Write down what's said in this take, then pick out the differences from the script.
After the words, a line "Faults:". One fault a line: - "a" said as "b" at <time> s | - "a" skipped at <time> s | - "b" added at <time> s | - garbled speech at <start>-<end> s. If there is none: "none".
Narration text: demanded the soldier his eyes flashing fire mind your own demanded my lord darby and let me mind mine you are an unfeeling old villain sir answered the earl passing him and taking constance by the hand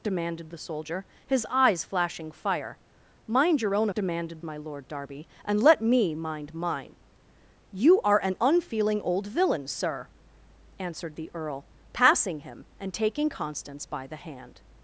demanded the soldier his eyes flashing fire mind your own demanded my lord darby and let me mind mine you are an unfeeling old villain sir answered the earl passing him and taking constance by the hand
Faults:
none